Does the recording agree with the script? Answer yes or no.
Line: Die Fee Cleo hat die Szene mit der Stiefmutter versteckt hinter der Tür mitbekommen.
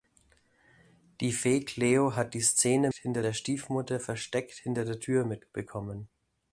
no